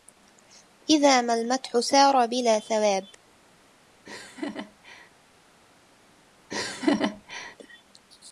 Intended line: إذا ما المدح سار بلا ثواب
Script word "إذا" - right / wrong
right